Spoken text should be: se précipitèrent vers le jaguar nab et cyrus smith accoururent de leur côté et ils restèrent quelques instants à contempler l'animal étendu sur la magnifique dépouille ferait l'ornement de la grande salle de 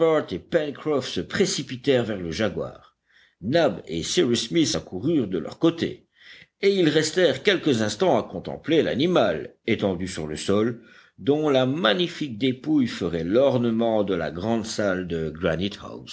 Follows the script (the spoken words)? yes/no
no